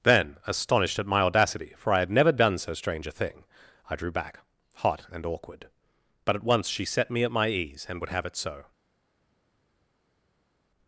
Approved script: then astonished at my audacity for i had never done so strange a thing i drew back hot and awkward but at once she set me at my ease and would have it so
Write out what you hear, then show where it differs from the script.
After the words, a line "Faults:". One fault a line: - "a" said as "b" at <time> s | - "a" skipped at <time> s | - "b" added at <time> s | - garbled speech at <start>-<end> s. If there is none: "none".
then astonished at my audacity for i had never done so strange a thing i drew back hot and awkward but at once she set me at my ease and would have it so
Faults:
none